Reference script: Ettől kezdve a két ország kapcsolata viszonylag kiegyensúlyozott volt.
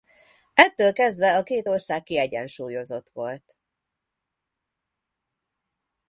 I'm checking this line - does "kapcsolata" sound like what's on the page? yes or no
no